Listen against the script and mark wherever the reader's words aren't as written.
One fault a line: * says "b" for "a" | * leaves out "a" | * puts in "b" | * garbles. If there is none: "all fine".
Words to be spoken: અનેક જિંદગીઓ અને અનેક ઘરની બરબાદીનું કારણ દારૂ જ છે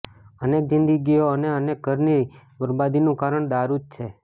all fine